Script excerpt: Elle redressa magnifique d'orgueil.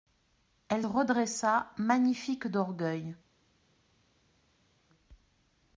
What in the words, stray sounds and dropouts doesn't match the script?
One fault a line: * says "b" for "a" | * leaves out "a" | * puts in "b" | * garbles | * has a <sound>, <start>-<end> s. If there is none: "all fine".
all fine